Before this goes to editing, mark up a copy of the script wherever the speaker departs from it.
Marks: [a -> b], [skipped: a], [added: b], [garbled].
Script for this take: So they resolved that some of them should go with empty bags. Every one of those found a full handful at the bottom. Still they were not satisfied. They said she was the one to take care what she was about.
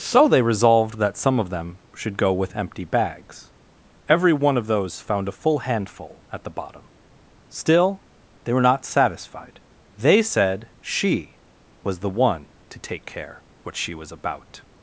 So they resolved that some of them should go with empty bags. Every one of those found a full handful at the bottom. Still they were not satisfied. They said she was the one to take care what she was about.